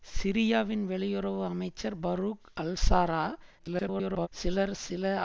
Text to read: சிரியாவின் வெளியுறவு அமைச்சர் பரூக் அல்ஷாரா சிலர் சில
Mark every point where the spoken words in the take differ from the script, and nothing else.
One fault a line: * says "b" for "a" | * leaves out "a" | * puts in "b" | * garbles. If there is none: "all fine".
* garbles